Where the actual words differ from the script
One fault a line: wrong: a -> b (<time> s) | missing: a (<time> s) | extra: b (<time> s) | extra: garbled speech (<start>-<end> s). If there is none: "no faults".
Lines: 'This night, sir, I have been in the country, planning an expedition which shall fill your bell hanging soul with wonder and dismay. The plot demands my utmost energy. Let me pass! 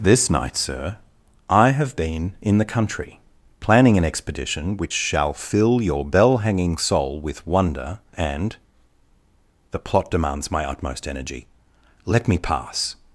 missing: dismay (8.6 s)